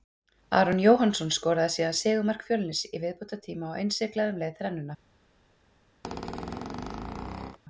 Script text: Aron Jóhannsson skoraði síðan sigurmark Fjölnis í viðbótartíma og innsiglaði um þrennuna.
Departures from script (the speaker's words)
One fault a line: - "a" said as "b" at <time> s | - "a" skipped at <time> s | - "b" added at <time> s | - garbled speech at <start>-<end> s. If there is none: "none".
- "leið" added at 4.5 s